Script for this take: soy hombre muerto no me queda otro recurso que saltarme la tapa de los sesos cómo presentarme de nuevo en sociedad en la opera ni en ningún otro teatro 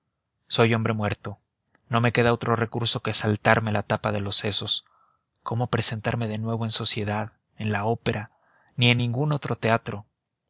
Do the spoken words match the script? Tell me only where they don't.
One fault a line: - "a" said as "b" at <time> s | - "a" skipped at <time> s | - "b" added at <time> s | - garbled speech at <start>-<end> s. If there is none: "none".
none